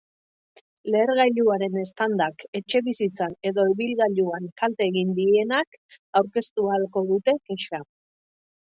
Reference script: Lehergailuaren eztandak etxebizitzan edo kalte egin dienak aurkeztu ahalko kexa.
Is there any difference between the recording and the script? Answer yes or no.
yes